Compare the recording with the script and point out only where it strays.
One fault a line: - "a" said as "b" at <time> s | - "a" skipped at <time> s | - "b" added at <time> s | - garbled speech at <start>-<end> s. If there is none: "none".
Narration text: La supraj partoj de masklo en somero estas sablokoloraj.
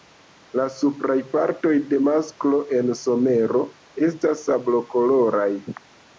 none